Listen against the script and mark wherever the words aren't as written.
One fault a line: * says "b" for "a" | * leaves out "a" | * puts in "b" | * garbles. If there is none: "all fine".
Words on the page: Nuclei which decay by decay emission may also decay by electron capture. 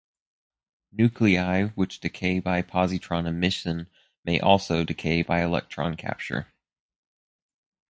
* says "positron" for "decay"